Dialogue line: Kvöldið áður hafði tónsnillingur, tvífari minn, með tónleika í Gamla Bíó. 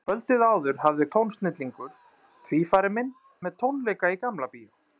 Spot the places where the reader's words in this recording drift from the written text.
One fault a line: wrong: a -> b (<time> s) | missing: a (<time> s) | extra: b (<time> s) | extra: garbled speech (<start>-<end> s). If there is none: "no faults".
no faults